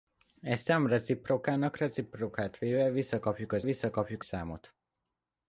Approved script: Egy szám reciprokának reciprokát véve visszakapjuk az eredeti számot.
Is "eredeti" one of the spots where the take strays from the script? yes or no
yes